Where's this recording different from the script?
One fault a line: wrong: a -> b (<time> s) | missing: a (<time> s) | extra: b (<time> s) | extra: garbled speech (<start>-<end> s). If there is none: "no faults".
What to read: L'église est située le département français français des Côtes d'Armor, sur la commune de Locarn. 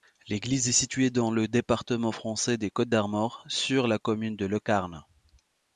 extra: dans (1.1 s)
missing: français (2.6 s)